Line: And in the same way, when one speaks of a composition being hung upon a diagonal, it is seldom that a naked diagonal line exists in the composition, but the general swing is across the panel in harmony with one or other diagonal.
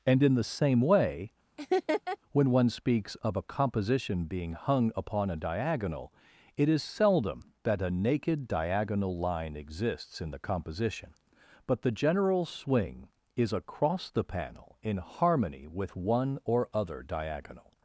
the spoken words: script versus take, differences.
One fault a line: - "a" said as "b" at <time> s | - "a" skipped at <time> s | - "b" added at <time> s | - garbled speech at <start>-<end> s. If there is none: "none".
none